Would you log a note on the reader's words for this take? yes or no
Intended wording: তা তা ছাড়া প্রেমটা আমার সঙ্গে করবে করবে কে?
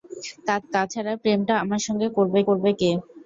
no